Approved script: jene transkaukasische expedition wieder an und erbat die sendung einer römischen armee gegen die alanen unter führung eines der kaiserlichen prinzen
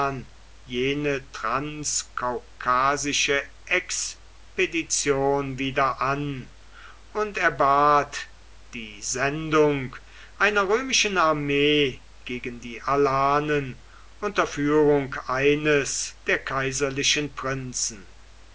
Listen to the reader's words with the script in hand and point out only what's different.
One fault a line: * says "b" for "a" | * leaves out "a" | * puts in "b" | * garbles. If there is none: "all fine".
all fine